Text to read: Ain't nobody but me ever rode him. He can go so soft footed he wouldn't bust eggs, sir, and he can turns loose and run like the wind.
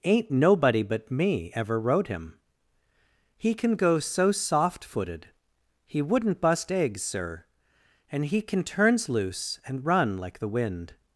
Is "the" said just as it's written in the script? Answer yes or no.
yes